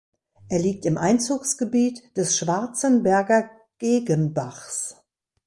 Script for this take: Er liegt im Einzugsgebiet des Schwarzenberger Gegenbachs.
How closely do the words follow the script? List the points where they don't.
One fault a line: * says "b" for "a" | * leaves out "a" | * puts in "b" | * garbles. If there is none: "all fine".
all fine